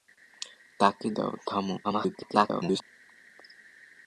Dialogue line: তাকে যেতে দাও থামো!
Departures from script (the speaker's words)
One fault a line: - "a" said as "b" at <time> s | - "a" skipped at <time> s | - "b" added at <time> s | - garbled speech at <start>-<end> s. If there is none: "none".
- "যেতে" skipped at 1.1 s
- garbled speech at 1.8-2.8 s